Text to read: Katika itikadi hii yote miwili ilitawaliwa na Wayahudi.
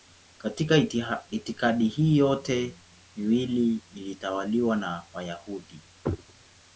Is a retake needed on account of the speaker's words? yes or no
no